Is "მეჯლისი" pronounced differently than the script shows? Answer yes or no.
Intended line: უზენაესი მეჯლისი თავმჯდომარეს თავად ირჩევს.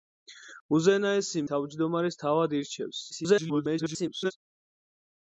yes